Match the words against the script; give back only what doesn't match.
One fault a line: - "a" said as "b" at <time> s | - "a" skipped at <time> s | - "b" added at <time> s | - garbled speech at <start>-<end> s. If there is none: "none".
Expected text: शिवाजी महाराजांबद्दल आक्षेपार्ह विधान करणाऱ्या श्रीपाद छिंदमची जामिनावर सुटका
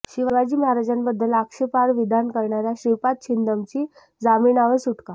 none